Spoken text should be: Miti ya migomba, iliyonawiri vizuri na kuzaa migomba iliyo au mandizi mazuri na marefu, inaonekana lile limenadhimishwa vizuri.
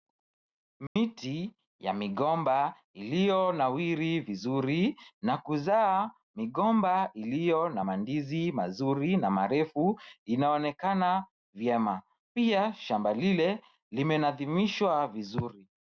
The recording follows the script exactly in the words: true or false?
false